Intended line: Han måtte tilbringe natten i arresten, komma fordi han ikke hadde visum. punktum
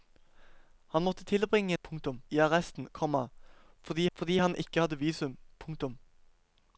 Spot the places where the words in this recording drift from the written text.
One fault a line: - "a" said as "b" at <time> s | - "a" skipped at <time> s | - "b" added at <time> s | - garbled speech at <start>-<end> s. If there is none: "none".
- "natten" said as "punktum" at 1.8 s
- "fordi" added at 4.1 s